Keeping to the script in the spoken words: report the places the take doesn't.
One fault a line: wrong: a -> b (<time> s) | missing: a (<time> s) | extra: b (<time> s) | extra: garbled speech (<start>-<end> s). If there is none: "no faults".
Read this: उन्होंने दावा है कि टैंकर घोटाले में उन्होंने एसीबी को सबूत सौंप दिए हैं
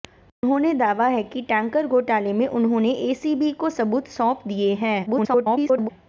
extra: garbled speech (5.1-5.9 s)